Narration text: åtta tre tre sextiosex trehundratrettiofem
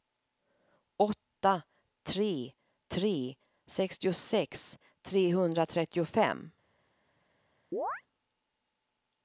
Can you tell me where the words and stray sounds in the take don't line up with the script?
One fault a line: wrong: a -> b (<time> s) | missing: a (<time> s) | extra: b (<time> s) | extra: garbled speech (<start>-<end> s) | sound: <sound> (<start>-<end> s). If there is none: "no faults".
sound: chirp (7.7-8.0 s)